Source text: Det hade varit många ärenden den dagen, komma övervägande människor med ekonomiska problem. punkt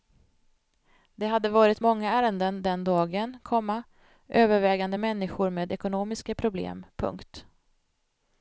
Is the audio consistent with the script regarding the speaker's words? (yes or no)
yes